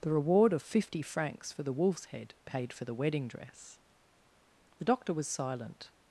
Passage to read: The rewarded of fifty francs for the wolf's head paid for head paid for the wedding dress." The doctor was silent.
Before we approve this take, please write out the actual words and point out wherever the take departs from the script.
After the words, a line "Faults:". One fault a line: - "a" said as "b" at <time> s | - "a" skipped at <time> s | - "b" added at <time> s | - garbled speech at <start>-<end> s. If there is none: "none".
The reward of fifty francs for the wolf's head paid for the wedding dress." The doctor was silent.
Faults:
- "rewarded" said as "reward" at 0.1 s
- "head paid for" skipped at 2.9 s